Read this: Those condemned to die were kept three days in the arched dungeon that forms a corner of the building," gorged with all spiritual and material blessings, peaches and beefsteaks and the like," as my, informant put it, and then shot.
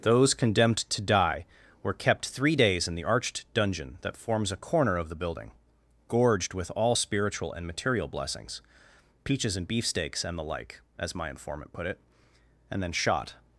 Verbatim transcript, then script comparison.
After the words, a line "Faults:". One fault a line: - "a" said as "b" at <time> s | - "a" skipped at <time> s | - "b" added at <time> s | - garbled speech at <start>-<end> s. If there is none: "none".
Those condemned to die were kept three days in the arched dungeon that forms a corner of the building," gorged with all spiritual and material blessings, peaches and beefsteaks and the like," as my, informant put it, and then shot.
Faults:
none